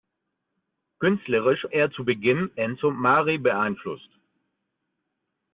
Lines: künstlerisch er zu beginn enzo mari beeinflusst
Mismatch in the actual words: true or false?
false